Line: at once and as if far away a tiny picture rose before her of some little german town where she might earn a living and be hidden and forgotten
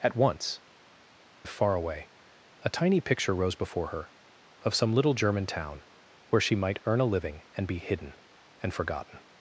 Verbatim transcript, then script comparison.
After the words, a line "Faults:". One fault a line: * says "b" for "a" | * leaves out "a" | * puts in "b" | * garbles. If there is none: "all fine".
at once if far away a tiny picture rose before her of some little german town where she might earn a living and be hidden and forgotten
Faults:
* leaves out "and as"